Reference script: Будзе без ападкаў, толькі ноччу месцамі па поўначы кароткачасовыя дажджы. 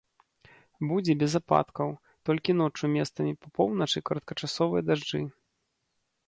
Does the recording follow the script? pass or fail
pass